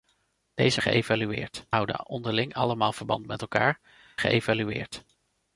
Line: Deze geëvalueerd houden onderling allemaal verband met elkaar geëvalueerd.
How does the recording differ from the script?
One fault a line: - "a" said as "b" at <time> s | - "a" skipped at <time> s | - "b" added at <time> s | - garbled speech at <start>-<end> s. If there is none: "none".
none